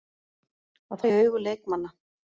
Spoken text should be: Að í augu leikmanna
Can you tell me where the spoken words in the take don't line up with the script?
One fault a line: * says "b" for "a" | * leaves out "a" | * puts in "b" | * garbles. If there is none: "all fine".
all fine